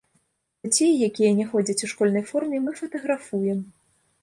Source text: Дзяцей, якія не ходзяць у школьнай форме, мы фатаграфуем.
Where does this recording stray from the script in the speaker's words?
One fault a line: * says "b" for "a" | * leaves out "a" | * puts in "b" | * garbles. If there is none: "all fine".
all fine